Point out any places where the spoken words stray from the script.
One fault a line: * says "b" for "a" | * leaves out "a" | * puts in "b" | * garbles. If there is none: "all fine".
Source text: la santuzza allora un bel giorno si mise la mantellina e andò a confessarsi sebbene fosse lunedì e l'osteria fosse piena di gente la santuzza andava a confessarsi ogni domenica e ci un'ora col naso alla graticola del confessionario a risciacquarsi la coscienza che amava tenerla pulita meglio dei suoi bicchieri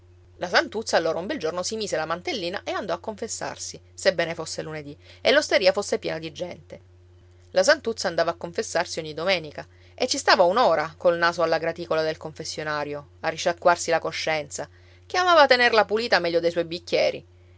* puts in "stava"